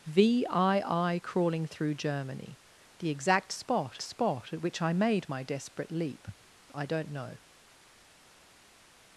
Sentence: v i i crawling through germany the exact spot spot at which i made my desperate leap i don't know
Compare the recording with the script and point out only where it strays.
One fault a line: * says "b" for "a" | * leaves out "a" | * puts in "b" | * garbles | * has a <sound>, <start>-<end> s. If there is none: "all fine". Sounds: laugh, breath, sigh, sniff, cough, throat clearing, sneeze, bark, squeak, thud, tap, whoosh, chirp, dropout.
all fine